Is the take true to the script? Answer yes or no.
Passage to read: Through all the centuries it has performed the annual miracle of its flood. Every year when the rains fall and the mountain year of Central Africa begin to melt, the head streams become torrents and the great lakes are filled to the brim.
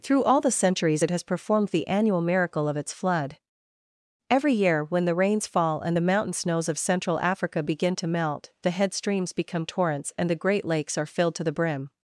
no